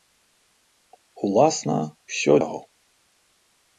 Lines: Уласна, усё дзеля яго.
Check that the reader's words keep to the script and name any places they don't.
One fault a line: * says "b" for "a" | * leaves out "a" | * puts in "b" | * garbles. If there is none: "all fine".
* leaves out "дзеля"